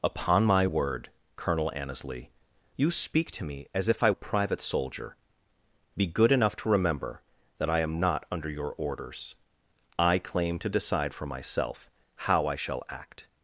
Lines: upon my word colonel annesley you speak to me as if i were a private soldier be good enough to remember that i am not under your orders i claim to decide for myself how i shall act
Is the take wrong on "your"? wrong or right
right